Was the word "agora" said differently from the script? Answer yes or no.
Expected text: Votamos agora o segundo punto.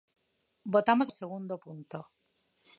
yes